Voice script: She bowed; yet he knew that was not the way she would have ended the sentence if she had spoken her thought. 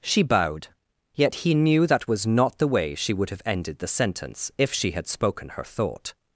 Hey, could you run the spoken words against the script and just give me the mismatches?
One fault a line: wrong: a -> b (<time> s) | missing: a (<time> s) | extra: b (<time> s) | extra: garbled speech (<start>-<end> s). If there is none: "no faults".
no faults